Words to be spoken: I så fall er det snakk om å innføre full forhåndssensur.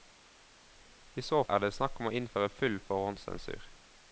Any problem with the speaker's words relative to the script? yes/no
yes